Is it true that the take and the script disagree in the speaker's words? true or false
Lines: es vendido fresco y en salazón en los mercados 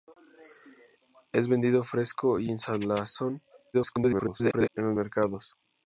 true